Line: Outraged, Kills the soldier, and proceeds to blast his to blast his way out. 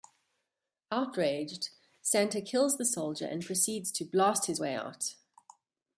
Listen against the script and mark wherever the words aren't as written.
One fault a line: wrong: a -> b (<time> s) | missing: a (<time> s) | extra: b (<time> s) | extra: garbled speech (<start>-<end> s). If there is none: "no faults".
extra: Santa (2.0 s)
missing: to blast his (4.6 s)